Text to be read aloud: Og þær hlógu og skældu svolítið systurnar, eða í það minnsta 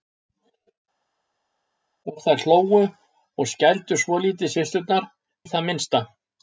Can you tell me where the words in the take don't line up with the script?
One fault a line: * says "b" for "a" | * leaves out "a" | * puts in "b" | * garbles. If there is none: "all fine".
* leaves out "eða"